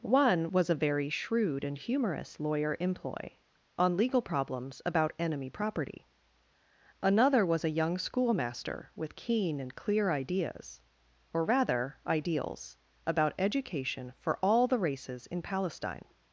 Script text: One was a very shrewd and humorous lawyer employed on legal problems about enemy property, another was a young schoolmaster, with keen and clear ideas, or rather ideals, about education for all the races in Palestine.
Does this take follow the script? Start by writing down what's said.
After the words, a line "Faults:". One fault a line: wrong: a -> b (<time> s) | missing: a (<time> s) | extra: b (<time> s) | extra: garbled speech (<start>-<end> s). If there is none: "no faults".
One was a very shrewd and humorous lawyer employ on legal problems about enemy property, another was a young schoolmaster, with keen and clear ideas, or rather ideals, about education for all the races in Palestine.
Faults:
wrong: employed -> employ (2.8 s)